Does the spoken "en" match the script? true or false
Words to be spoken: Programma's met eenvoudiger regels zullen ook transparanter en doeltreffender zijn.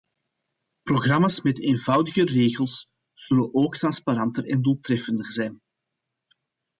true